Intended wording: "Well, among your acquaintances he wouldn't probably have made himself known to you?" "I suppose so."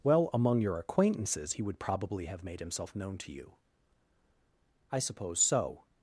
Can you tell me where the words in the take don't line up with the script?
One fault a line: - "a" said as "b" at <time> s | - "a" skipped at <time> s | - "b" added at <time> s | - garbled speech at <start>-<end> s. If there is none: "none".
- "wouldn't" said as "would" at 1.6 s